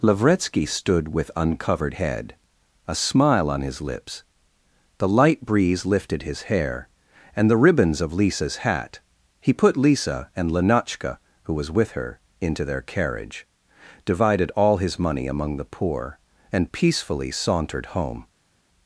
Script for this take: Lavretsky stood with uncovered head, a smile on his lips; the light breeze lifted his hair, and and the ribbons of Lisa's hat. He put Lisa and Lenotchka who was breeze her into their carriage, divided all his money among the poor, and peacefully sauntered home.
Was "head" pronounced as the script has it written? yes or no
yes